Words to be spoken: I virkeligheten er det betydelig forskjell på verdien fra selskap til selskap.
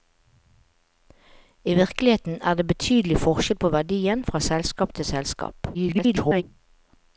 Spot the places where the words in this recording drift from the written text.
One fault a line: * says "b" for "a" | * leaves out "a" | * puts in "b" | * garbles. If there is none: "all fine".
* garbles